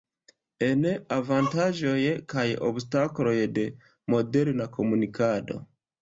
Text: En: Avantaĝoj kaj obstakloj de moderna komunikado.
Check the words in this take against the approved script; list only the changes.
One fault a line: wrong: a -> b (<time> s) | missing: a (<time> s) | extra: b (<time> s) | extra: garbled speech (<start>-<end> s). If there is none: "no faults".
no faults